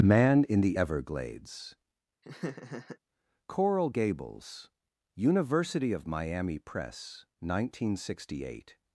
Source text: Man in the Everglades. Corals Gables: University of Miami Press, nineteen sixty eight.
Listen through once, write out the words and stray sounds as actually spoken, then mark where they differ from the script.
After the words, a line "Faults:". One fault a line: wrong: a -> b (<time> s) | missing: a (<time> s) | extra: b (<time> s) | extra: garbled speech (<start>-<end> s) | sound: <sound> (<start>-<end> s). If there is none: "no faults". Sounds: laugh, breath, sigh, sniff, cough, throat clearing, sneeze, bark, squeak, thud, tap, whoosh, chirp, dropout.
Man in the Everglades. Coral Gables: University of Miami Press, nineteen sixty eight.
Faults:
sound: laugh (2.2-3.0 s)
wrong: Corals -> Coral (3.5 s)